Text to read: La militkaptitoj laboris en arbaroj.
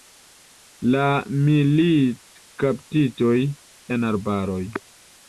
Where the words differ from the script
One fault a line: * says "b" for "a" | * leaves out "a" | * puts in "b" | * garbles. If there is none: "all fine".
* leaves out "laboris"